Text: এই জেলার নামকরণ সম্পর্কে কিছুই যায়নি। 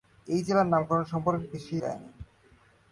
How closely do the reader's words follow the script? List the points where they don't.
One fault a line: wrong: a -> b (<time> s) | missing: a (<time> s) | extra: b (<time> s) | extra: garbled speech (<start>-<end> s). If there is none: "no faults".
no faults